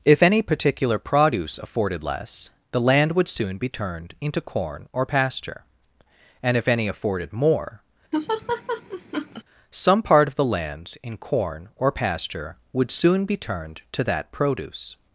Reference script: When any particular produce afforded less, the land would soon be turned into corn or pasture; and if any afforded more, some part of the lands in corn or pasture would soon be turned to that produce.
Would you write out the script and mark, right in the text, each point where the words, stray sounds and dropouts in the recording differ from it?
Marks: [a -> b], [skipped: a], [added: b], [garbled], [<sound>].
[When -> If] any particular produce afforded less, the land would soon be turned into corn or pasture; and if any afforded more, [laugh] some part of the lands in corn or pasture would soon be turned to that produce.